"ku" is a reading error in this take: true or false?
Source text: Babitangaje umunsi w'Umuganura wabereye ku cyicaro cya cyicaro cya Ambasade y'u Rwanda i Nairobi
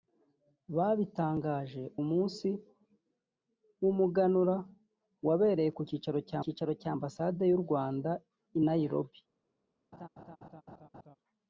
false